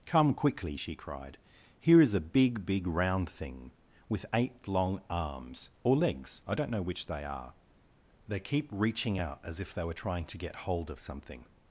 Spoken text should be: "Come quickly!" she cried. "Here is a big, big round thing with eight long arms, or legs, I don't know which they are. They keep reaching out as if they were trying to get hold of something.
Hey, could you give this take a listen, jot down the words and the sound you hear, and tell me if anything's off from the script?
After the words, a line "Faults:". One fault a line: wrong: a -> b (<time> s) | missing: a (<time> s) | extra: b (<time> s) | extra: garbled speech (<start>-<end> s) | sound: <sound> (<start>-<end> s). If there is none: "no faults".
"Come quickly!" she cried. "Here is a big, big round thing with eight long arms, or legs, I don't know which they are. They keep reaching out as if they were trying to get hold of something.
Faults:
no faults